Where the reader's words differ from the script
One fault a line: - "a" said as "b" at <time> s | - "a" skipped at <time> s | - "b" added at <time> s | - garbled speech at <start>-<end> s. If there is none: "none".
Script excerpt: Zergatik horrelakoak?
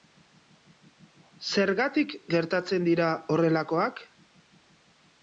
- "gertatzen dira" added at 2.4 s